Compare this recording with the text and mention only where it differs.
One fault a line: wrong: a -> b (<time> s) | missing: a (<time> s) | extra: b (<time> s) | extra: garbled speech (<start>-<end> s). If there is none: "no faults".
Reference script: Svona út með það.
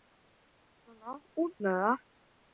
no faults